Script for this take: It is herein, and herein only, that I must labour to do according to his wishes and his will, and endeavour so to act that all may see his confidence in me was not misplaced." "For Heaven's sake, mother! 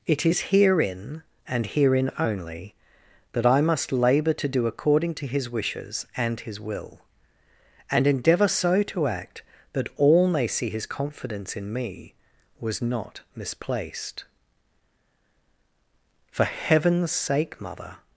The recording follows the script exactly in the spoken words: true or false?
true